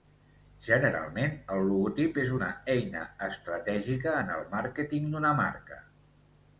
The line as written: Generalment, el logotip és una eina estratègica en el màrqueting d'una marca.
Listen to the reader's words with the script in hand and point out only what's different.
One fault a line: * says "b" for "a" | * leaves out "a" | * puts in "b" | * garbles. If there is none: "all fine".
all fine